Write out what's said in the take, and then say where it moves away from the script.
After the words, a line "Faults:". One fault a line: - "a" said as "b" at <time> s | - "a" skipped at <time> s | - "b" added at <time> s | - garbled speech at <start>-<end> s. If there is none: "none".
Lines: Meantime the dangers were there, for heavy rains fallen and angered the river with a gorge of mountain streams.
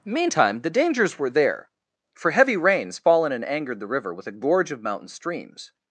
Meantime the dangers were there, for heavy rains fallen and angered the river with a gorge of mountain streams.
Faults:
none